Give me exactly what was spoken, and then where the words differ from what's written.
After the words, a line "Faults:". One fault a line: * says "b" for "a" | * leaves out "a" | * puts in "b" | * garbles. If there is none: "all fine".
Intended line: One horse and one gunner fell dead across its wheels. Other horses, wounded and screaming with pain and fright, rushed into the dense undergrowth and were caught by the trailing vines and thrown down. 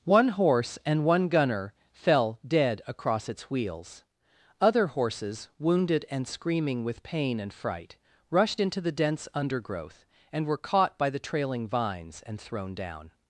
One horse and one gunner fell dead across its wheels. Other horses, wounded and screaming with pain and fright, rushed into the dense undergrowth and were caught by the trailing vines and thrown down.
Faults:
all fine